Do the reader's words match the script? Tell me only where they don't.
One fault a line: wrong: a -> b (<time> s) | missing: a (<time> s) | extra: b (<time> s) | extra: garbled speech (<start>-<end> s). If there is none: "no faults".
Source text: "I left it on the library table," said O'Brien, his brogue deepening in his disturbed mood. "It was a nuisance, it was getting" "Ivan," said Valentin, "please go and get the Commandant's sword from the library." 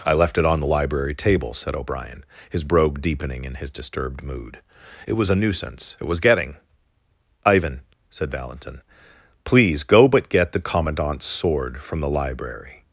wrong: and -> but (10.1 s)